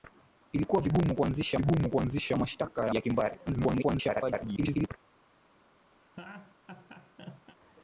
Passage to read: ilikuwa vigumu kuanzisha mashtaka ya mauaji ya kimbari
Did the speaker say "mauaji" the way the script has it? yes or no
no